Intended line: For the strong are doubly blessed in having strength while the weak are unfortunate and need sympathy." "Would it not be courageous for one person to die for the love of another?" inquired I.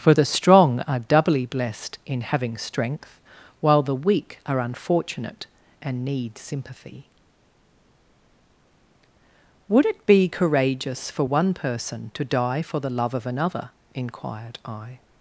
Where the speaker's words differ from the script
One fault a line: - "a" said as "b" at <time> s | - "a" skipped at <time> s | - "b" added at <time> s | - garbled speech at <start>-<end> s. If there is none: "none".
- "not" skipped at 10.1 s